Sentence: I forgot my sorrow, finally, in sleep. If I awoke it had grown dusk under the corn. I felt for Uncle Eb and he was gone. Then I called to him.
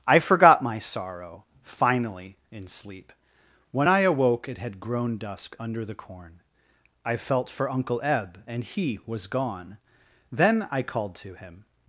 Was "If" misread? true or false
true